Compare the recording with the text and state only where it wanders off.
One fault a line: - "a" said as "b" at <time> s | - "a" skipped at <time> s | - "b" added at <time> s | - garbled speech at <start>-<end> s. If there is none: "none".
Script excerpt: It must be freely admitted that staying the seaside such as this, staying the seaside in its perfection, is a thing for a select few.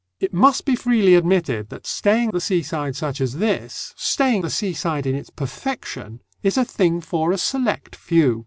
none